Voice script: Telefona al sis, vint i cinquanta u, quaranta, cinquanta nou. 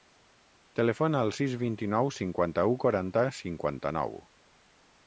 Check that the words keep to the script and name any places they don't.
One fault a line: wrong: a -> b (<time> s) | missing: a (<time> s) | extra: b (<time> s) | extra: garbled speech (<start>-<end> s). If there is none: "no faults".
extra: nou (1.9 s)